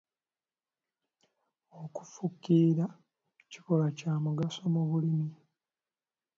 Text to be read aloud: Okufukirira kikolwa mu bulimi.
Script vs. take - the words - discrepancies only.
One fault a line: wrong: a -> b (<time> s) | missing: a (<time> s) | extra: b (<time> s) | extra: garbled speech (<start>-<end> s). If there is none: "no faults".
extra: kya mugaso (4.0 s)